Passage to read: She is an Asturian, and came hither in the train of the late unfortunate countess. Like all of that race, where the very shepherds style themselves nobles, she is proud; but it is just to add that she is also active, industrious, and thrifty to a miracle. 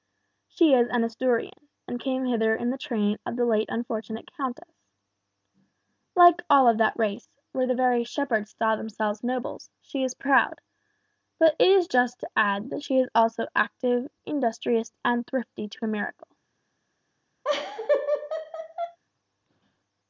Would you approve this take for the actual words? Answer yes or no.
yes